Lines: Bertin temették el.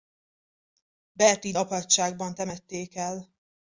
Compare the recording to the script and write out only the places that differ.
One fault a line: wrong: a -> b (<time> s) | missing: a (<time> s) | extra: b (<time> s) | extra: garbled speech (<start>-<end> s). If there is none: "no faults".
extra: apátságban (1.6 s)